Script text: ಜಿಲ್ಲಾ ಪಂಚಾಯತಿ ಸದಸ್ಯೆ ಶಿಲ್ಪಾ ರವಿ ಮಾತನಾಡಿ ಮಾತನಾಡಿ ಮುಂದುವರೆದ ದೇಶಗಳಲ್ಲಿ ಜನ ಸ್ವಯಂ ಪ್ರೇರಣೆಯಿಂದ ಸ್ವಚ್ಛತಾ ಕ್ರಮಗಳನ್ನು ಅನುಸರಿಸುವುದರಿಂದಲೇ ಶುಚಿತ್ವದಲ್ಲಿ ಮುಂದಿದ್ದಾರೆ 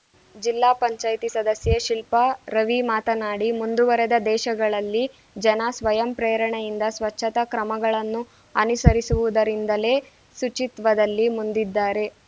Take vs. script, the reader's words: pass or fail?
fail